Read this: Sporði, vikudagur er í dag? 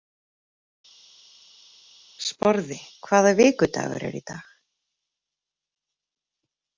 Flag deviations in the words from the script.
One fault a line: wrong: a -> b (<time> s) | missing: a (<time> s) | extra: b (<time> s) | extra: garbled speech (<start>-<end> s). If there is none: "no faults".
extra: hvaða (3.1 s)